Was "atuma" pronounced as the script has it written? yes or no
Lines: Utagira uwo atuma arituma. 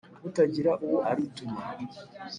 no